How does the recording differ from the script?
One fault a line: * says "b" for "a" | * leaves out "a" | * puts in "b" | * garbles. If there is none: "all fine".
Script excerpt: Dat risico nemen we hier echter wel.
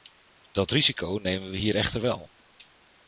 all fine